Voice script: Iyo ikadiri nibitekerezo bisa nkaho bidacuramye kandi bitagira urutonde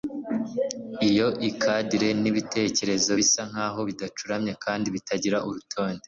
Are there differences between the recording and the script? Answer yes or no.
no